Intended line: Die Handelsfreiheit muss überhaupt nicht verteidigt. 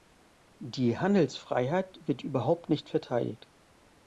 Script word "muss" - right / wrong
wrong